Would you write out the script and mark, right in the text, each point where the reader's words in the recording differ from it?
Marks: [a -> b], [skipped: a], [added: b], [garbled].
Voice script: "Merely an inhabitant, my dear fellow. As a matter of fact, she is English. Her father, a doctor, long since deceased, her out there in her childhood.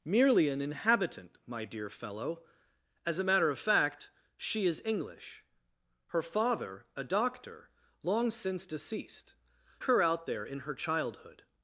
"Merely an inhabitant, my dear fellow. As a matter of fact, she is English. Her father, a doctor, long since deceased, her out there in her childhood.